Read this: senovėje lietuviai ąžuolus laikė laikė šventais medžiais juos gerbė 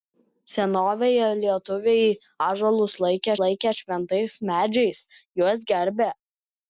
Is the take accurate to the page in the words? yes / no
yes